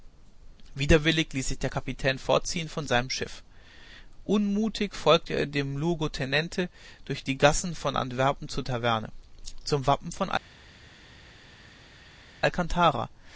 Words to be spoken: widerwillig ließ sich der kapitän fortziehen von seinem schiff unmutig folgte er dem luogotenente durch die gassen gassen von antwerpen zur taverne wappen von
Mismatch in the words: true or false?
true